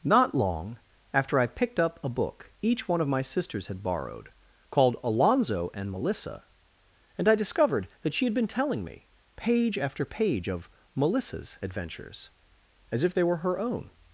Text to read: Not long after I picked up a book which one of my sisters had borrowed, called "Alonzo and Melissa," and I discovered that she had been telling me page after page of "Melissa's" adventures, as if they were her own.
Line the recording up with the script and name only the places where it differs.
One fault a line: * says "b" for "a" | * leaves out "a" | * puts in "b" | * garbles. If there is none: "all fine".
* says "each" for "which"